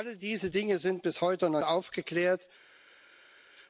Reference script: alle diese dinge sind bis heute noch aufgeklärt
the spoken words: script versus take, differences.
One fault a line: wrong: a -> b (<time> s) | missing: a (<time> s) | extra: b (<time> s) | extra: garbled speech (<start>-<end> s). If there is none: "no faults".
no faults